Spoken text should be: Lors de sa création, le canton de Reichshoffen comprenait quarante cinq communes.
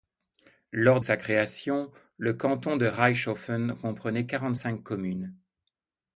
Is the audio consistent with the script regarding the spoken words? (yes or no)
no